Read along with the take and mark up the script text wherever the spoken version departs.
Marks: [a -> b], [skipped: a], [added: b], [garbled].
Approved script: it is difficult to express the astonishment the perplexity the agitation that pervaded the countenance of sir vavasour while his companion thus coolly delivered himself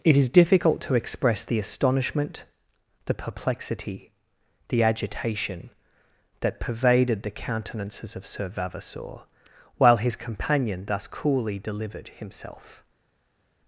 it is difficult to express the astonishment the perplexity the agitation that pervaded the [countenance -> countenances] of sir vavasour while his companion thus coolly delivered himself